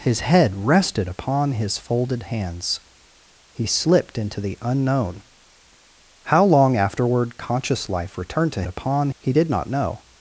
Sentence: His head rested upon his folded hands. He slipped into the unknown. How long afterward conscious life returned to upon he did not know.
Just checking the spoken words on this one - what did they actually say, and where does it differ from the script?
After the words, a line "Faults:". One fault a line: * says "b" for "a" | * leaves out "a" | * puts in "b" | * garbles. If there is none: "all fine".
His head rested upon his folded hands. He slipped into the unknown. How long afterward conscious life returned to upon he did not know.
Faults:
all fine